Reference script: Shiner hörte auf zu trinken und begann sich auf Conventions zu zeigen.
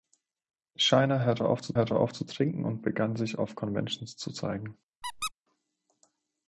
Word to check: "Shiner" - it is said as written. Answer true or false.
true